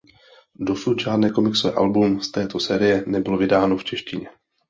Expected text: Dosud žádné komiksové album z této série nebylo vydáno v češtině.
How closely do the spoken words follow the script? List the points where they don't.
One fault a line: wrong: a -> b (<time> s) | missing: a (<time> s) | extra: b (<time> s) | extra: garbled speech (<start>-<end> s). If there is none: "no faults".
no faults